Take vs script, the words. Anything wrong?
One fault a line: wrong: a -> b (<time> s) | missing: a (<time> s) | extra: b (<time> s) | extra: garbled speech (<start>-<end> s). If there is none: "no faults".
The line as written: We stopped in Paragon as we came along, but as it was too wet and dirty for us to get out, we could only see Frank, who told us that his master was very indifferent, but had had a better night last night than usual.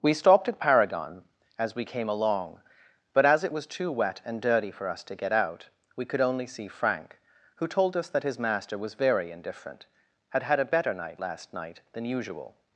wrong: in -> at (0.5 s)
missing: but (9.9 s)